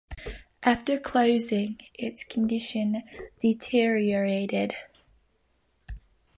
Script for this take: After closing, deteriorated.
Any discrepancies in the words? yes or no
yes